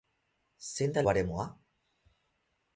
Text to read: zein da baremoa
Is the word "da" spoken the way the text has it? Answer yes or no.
yes